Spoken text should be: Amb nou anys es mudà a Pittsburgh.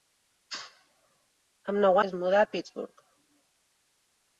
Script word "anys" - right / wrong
wrong